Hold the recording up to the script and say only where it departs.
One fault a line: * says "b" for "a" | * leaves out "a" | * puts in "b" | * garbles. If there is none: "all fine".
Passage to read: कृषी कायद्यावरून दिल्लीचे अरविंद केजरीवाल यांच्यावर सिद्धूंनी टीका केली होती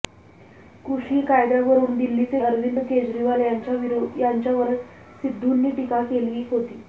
all fine